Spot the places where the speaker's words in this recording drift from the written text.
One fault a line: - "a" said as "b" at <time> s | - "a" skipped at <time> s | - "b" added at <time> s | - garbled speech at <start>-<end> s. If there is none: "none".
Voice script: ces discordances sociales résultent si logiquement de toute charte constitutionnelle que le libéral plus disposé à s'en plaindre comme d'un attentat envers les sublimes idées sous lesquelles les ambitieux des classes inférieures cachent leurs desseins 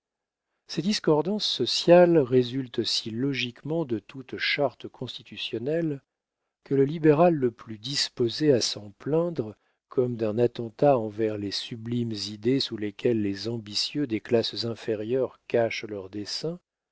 - "le" added at 7.3 s